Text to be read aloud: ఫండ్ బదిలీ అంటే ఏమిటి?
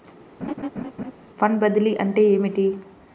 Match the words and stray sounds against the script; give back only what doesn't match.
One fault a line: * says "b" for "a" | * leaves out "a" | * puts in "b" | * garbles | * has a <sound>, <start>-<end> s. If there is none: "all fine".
* has a laugh, 0.4-1.1 s